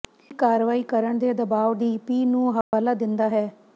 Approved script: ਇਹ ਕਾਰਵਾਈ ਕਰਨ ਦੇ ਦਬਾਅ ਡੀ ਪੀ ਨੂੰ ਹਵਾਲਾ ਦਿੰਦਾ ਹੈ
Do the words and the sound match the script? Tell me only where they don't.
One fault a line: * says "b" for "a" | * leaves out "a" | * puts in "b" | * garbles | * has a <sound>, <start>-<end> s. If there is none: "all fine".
* has a dropout, 2.6-2.7 s